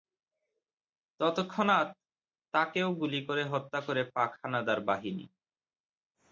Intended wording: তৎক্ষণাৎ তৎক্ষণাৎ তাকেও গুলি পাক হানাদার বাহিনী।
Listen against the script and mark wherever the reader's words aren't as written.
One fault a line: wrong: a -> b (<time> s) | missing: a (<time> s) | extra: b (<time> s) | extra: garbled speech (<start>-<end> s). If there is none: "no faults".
missing: তৎক্ষণাৎ (1.9 s)
extra: করে হত্যা করে (3.3 s)